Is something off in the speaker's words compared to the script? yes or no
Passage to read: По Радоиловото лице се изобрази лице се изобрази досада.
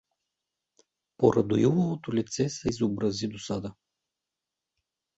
yes